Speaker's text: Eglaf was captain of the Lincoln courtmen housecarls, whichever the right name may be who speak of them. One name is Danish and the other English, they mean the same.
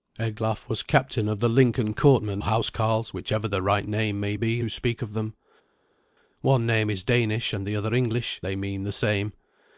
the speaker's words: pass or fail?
pass